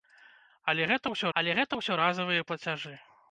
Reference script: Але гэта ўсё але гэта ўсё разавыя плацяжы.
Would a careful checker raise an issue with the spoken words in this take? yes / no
no